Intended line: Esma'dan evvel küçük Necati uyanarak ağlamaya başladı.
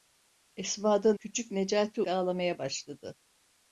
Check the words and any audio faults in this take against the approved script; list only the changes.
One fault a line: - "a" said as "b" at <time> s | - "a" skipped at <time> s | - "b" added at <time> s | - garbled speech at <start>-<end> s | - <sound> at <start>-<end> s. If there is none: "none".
- "evvel" skipped at 1.2 s
- "uyanarak" skipped at 2.0 s